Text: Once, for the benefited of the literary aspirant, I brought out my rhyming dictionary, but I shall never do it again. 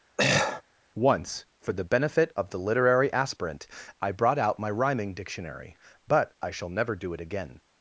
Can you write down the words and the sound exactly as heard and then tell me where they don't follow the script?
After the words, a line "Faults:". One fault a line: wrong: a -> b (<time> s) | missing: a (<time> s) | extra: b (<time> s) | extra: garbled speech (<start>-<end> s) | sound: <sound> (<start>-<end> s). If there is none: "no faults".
Once, for the benefit of the literary aspirant, I brought out my rhyming dictionary, but I shall never do it again.
Faults:
sound: throat clearing (0.2-0.6 s)
wrong: benefited -> benefit (1.8 s)